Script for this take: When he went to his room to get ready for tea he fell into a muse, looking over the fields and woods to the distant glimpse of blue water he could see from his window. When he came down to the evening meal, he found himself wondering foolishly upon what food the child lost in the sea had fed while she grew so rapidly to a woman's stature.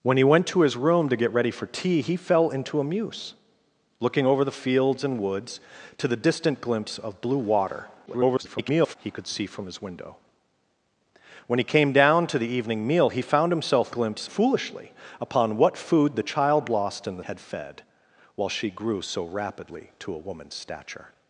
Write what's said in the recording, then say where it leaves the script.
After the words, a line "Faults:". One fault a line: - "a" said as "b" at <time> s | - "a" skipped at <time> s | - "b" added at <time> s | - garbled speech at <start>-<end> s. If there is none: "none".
When he went to his room to get ready for tea he fell into a muse, looking over the fields and woods to the distant glimpse of blue water [garbled] he could see from his window. When he came down to the evening meal, he found himself glimpse foolishly upon what food the child lost in the had fed while she grew so rapidly to a woman's stature.
Faults:
- garbled speech at 8.1-9.0 s
- "wondering" said as "glimpse" at 13.9 s
- "sea" skipped at 17.2 s